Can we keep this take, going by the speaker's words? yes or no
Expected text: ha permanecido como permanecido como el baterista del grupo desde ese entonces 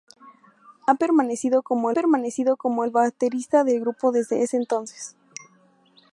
yes